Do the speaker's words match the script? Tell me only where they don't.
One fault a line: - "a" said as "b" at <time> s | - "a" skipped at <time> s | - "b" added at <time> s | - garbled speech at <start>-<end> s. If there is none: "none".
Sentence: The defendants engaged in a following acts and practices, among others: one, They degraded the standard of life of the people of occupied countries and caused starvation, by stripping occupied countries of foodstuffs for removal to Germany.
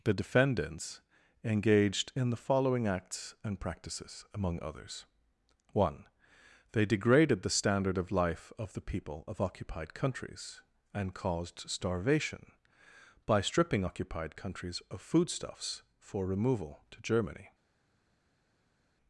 - "a" said as "the" at 2.3 s